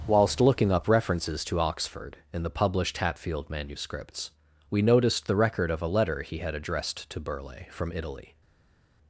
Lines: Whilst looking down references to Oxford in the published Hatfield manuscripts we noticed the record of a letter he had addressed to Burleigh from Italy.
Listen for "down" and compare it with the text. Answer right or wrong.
wrong